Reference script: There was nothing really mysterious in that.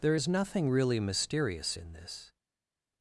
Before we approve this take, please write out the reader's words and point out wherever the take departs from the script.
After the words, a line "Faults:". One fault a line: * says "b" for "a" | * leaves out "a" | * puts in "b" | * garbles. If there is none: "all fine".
There is nothing really mysterious in this.
Faults:
* says "is" for "was"
* says "this" for "that"